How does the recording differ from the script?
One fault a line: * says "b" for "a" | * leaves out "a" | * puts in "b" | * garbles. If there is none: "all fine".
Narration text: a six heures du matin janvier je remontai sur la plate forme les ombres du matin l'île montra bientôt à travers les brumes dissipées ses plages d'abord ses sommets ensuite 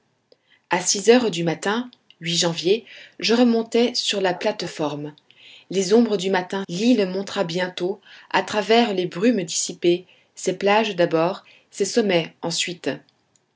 all fine